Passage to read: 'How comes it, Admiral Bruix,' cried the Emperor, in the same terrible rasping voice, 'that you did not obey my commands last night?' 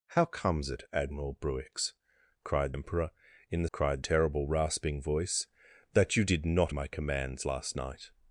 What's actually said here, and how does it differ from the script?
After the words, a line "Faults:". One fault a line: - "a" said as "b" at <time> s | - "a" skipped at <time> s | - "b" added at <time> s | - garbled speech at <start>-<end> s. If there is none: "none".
'How comes it, Admiral Bruix,' cried Emperor, in the cried terrible rasping voice, 'that you did not my commands last night?'
Faults:
- "the" skipped at 2.7 s
- "same" said as "cried" at 3.7 s
- "obey" skipped at 6.7 s